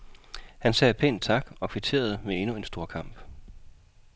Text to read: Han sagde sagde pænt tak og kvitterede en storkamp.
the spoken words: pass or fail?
fail